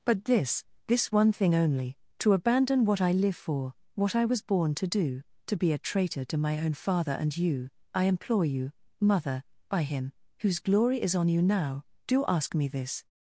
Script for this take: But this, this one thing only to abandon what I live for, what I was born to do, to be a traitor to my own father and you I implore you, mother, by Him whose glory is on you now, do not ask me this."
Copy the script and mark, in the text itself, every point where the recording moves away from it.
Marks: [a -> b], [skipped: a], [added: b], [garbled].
But this, this one thing only to abandon what I live for, what I was born to do, to be a traitor to my own father and you I implore you, mother, by Him whose glory is on you now, do [skipped: not] ask me this."